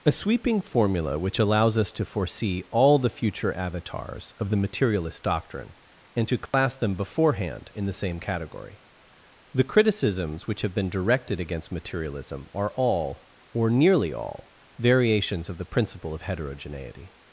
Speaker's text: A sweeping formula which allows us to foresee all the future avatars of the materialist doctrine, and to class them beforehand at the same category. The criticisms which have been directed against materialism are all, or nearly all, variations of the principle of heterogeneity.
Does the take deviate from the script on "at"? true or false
true